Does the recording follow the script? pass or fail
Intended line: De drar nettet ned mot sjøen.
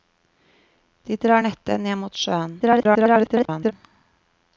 fail